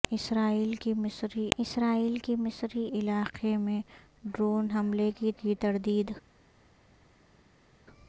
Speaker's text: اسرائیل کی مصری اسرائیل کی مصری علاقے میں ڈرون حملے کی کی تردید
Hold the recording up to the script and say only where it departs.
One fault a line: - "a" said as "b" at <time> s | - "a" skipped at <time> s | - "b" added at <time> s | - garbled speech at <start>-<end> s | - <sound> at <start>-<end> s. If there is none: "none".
none